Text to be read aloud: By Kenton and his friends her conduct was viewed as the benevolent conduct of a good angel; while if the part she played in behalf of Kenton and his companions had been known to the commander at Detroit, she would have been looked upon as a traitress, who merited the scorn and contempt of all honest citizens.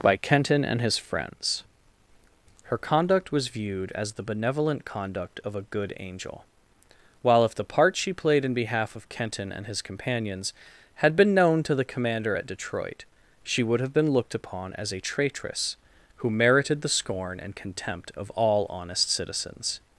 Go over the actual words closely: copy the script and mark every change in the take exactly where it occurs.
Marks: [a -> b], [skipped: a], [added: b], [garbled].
By Kenton and his friends her conduct was viewed as the benevolent conduct of a good angel; while if the part she played in behalf of Kenton and his companions had been known to the commander at Detroit, she would have been looked upon as a traitress, who merited the scorn and contempt of all honest citizens.